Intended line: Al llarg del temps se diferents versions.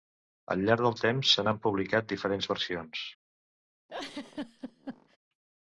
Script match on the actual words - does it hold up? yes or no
no